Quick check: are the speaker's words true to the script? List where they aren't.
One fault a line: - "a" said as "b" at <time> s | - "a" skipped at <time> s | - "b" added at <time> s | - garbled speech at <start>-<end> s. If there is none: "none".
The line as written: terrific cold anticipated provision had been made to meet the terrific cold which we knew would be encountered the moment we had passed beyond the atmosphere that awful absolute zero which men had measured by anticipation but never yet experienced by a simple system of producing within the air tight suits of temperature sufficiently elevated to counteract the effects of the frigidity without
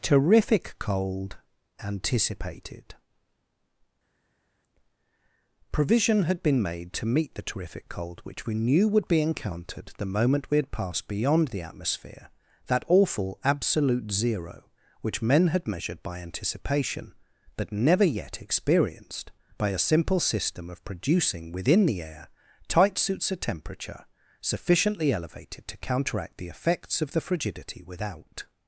none